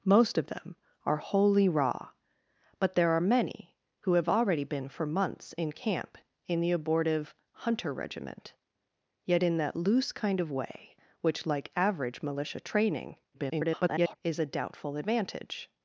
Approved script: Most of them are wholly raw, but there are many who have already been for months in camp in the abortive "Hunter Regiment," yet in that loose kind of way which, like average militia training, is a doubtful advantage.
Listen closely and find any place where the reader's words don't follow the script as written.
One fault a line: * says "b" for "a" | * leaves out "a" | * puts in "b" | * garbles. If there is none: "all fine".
* garbles